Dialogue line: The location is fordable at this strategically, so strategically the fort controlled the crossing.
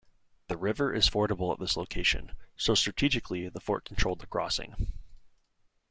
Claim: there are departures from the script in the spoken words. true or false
true